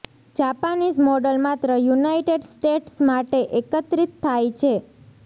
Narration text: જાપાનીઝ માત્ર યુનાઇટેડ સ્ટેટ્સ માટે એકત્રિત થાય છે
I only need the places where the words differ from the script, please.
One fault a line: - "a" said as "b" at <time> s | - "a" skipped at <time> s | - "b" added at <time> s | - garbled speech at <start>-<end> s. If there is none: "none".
- "મોડલ" added at 1.0 s